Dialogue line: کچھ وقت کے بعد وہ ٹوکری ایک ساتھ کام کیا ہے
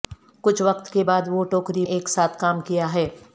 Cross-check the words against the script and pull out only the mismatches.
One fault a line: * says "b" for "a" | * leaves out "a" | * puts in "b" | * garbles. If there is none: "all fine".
all fine